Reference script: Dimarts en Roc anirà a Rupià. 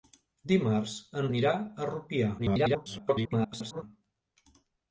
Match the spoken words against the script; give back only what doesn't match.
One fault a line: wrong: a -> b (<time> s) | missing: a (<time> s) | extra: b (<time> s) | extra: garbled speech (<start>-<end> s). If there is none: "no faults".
missing: Roc (1.3 s)
extra: garbled speech (2.4-3.8 s)